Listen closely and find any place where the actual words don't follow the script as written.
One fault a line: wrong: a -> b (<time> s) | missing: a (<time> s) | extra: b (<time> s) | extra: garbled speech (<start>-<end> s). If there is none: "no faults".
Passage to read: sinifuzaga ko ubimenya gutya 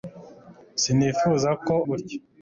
missing: ubimenya (1.8 s)